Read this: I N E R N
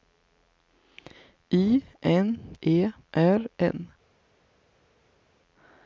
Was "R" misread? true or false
false